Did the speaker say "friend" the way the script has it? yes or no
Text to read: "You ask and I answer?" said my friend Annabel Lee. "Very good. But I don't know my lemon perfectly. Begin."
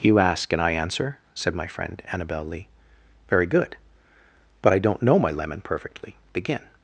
yes